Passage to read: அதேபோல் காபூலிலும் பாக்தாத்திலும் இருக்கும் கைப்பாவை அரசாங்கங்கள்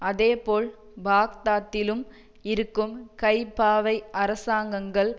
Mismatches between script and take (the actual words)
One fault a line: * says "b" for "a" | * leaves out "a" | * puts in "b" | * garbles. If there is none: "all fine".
* leaves out "காபூலிலும்"